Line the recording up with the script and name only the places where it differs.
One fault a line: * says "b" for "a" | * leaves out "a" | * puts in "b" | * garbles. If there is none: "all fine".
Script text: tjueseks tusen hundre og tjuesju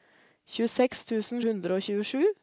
all fine